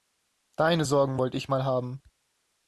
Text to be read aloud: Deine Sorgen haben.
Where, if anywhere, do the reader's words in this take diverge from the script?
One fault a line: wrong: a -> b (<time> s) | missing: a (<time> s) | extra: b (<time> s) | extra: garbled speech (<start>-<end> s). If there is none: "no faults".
extra: wollte ich mal (1.2 s)